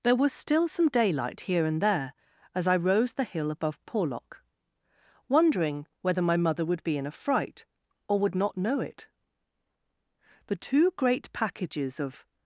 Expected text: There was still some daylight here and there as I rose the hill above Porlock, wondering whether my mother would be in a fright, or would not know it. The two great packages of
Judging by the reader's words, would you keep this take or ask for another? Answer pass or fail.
pass